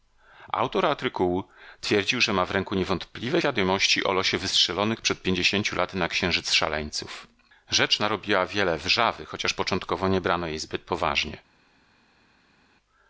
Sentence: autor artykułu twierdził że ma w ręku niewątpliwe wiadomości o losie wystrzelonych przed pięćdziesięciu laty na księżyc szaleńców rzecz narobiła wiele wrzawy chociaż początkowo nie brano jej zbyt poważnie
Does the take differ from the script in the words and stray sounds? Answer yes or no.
no